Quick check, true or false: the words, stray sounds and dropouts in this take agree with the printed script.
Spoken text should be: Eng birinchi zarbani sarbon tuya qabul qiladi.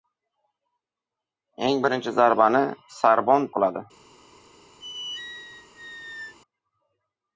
false